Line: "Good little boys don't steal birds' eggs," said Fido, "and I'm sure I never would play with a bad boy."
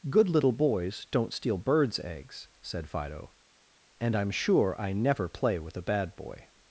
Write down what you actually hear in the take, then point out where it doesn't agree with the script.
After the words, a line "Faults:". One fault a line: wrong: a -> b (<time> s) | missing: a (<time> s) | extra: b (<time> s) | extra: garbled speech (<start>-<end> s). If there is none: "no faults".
"Good little boys don't steal birds' eggs," said Fido, "and I'm sure I never play with a bad boy."
Faults:
missing: would (5.3 s)